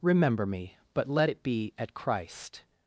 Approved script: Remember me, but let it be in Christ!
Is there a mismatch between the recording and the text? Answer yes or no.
yes